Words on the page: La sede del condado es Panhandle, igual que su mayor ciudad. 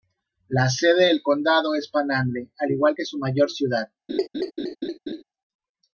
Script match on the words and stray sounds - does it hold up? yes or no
no